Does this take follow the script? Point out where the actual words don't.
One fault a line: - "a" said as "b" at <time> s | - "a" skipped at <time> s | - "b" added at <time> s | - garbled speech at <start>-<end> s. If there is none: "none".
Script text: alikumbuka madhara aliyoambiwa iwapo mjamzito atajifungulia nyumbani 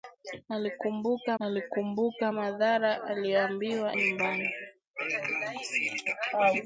- "alikumbuka" added at 1.4 s
- "iwapo mjamzito atajifungulia" skipped at 4.0 s